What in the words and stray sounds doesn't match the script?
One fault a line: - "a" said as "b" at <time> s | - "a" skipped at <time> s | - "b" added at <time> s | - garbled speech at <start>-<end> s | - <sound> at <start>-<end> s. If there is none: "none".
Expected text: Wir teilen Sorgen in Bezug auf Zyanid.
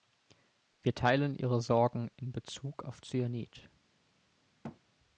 - "Ihre" added at 1.4 s
- thud at 4.6-4.8 s